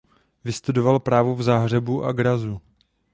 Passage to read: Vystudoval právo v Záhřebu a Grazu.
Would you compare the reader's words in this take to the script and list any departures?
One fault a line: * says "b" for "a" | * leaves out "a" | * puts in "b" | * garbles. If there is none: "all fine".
all fine